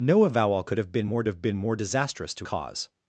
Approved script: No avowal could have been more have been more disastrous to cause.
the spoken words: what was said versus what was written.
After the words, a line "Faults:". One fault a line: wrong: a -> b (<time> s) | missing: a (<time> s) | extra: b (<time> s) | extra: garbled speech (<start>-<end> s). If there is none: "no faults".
No avowal could have been more have been more disastrous to cause.
Faults:
no faults